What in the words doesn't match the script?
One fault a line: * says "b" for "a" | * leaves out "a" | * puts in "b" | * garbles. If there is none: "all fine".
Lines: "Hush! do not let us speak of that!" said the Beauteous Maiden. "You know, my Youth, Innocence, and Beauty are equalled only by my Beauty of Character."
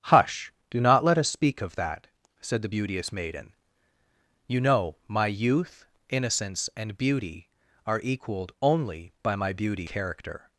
* leaves out "of"